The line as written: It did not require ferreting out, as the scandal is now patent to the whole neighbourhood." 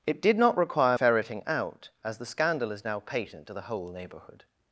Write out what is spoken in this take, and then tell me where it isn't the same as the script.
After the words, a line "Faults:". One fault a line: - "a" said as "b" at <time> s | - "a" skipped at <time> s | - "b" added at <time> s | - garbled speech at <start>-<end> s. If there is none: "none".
It did not require ferreting out, as the scandal is now patent to the whole neighbourhood."
Faults:
none